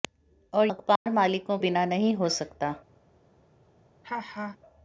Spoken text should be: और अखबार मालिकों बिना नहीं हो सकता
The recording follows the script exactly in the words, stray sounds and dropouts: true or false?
false